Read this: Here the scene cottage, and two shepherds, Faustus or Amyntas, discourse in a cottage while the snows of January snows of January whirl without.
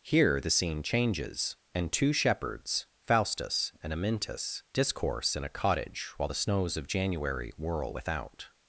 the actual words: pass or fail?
fail